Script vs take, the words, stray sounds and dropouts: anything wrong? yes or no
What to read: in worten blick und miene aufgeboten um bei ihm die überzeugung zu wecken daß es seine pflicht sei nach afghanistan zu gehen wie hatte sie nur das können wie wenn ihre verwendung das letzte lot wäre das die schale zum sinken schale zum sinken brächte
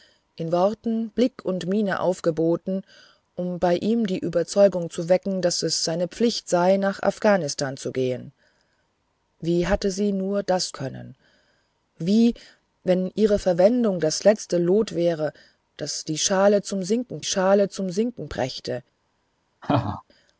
yes